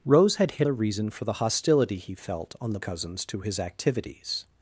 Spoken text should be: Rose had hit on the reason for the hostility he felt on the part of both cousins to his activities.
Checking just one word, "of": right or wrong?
wrong